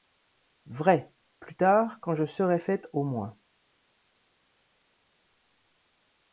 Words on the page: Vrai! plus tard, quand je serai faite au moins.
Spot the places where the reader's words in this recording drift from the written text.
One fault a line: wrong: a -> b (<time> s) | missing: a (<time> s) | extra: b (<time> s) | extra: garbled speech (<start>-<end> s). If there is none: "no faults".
no faults